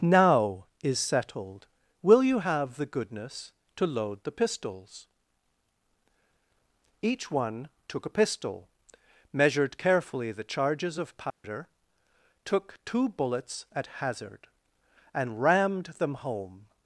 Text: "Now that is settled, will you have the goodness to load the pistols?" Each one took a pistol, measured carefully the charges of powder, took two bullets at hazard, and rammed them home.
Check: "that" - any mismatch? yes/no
yes